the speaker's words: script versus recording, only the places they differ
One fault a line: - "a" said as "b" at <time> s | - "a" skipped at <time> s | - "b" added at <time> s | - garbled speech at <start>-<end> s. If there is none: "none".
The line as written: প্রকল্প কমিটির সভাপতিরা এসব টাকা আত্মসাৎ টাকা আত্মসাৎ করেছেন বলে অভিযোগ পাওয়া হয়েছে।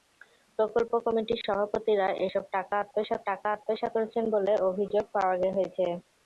none